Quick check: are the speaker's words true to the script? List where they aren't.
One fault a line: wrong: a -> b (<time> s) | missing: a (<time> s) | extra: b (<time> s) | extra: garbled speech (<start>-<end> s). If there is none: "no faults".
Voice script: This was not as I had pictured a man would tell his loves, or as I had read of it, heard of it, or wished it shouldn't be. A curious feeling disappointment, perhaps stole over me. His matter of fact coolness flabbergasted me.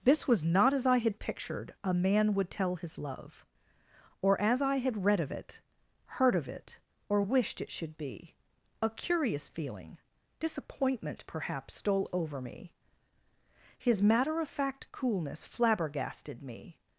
wrong: loves -> love (3.0 s)
wrong: shouldn't -> should (7.7 s)